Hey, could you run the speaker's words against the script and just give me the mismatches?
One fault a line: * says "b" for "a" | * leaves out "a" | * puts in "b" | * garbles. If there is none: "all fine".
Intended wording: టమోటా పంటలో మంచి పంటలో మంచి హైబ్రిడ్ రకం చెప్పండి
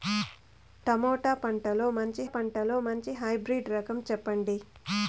all fine